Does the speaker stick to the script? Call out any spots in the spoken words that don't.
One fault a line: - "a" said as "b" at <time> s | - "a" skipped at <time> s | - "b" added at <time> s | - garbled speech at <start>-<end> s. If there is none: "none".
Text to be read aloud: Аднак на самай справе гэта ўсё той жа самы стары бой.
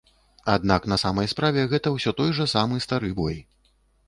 none